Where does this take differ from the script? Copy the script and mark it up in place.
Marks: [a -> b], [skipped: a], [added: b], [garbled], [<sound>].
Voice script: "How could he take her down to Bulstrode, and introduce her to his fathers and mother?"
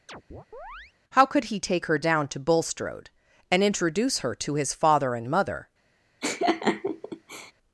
[chirp] "How could he take her down to Bulstrode, and introduce her to his [fathers -> father] and mother?" [laugh]